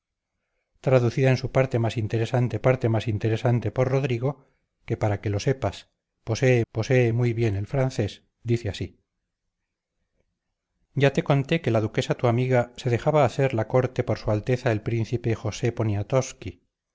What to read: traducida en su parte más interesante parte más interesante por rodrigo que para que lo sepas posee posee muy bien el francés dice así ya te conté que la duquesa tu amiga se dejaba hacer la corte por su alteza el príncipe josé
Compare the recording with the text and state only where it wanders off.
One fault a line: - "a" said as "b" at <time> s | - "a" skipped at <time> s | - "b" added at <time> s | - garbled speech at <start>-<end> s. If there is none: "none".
none